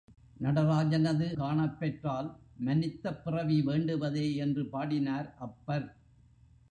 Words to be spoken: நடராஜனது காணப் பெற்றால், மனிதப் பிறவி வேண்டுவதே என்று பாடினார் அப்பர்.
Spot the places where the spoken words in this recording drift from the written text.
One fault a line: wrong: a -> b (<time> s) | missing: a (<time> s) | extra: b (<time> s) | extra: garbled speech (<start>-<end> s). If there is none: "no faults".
no faults